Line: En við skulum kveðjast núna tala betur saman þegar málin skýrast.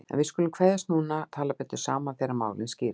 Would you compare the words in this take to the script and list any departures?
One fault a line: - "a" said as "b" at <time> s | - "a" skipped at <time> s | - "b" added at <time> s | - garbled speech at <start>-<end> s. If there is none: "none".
none